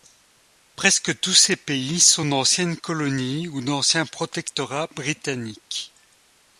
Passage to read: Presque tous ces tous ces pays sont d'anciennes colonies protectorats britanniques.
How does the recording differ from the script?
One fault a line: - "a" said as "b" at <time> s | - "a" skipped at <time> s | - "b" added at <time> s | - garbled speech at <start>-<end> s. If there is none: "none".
- "tous ces" skipped at 1.6 s
- "ou d'anciens" added at 3.5 s